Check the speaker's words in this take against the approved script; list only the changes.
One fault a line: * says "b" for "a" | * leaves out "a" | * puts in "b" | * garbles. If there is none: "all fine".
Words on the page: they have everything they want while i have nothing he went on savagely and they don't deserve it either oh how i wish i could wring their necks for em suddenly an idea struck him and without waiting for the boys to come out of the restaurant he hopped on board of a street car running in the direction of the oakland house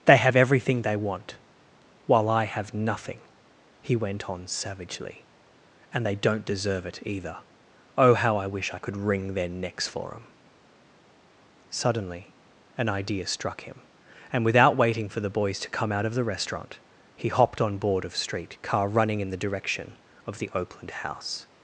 * leaves out "a"